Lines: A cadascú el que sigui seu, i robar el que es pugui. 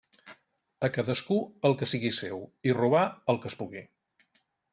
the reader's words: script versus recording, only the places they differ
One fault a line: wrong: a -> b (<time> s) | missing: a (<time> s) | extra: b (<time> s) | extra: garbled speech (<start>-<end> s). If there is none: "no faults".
no faults